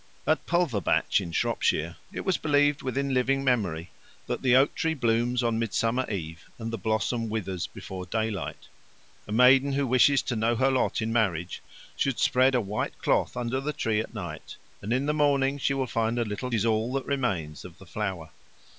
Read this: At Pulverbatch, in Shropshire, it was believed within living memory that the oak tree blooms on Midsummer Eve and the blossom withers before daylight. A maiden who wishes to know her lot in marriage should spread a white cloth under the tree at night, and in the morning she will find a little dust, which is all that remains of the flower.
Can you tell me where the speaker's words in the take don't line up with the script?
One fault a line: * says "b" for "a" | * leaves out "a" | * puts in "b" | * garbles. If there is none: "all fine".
* leaves out "dust which"